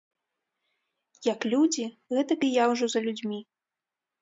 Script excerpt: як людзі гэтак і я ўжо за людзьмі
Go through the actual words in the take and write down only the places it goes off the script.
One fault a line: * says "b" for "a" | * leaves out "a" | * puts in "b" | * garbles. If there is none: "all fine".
all fine